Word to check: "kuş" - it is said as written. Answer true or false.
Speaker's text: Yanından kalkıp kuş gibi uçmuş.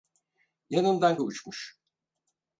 false